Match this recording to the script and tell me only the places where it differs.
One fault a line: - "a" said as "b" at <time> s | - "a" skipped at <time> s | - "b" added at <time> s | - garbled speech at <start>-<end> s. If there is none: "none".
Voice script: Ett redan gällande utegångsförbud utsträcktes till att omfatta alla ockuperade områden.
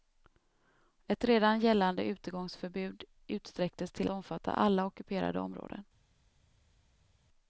- "att" skipped at 4.1 s